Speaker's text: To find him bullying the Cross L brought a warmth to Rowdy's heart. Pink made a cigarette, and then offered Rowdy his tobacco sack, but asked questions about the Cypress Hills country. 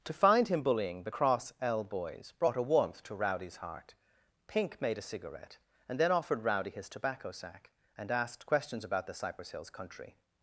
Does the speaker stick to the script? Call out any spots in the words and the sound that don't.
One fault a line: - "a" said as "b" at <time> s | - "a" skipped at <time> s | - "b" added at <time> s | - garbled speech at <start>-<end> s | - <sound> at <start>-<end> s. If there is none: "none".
- "boys" added at 1.8 s
- "but" said as "and" at 8.0 s